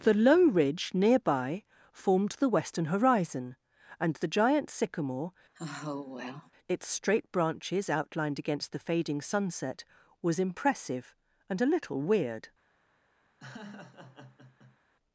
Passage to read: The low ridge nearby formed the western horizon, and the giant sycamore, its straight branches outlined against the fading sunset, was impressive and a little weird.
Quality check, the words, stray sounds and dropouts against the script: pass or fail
fail